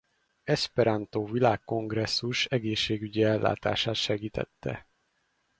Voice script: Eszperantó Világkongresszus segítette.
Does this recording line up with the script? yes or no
no